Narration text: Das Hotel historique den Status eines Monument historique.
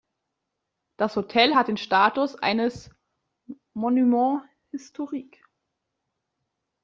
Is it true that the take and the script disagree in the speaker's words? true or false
true